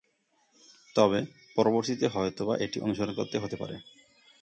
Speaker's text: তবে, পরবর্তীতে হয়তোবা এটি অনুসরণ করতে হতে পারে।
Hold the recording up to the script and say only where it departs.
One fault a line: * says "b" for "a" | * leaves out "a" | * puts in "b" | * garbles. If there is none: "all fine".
all fine